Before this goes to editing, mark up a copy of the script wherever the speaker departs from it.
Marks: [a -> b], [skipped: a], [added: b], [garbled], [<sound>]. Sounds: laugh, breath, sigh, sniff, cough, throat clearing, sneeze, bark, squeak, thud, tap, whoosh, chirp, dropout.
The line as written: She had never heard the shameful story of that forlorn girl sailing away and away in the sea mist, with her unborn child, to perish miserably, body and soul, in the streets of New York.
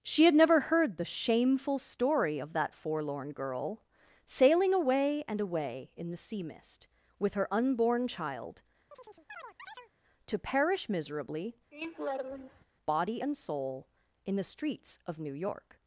She had never heard the shameful story of that forlorn girl sailing away and away in the sea mist, with her unborn child, [chirp] to perish miserably, [laugh] body and soul, in the streets of New York.